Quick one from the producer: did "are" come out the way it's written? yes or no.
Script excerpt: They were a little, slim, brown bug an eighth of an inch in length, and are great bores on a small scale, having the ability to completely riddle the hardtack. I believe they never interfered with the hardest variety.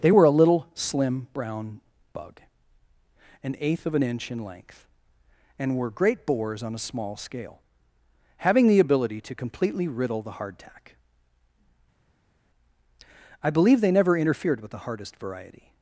no